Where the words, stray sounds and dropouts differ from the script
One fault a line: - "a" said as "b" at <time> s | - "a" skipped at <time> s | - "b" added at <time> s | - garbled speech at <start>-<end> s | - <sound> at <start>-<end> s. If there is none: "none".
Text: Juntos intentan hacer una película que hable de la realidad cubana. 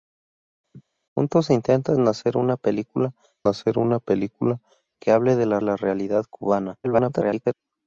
- laugh at 0.7-0.8 s
- "hacer una película" added at 3.5 s
- "la" added at 5.6 s
- garbled speech at 6.8-7.5 s